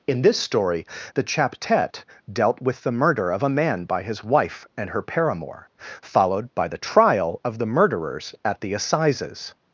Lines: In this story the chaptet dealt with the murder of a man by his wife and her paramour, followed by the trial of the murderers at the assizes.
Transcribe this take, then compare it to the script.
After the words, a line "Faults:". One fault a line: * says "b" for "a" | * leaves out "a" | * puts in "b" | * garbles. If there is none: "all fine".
In this story the chaptet dealt with the murder of a man by his wife and her paramour, followed by the trial of the murderers at the assizes.
Faults:
all fine